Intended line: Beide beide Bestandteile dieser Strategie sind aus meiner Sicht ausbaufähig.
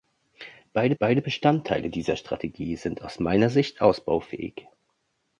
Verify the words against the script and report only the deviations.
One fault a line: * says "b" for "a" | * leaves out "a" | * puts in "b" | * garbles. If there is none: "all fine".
all fine